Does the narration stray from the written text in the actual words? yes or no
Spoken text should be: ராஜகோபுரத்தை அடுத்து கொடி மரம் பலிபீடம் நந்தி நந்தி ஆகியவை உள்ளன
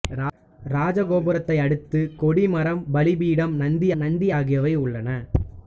no